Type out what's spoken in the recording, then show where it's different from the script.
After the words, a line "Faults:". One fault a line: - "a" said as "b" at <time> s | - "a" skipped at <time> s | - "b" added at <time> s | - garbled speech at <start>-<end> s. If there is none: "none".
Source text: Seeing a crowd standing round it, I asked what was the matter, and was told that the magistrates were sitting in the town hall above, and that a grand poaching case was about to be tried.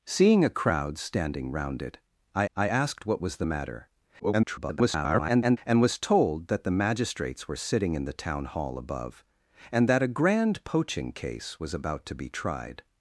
Seeing a crowd standing round it, I I asked what was the matter, [garbled] and was told that the magistrates were sitting in the town hall above, and that a grand poaching case was about to be tried.
Faults:
- "I" added at 2.5 s
- garbled speech at 4.2-5.6 s